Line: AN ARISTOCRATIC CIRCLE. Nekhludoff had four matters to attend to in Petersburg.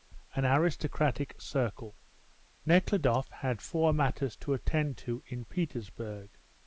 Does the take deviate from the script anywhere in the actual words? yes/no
no